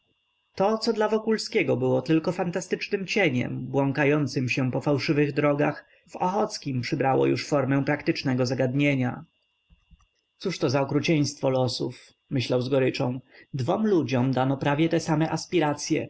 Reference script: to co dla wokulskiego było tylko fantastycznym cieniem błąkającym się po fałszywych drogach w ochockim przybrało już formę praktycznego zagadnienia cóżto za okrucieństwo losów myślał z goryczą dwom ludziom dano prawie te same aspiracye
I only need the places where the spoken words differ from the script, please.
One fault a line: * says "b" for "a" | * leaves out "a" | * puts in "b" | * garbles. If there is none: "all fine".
all fine